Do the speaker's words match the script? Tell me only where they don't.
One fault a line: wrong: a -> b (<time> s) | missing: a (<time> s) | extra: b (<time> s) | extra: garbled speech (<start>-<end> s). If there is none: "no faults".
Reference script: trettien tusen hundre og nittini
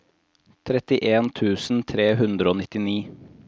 extra: tre (1.9 s)